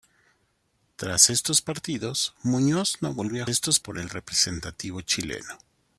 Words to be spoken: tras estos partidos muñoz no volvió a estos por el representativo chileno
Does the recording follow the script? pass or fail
pass